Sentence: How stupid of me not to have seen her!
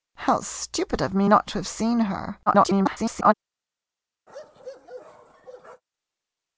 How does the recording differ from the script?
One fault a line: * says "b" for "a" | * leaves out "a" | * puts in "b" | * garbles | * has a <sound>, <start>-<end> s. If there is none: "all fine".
* garbles
* has a bark, 4.3-5.8 s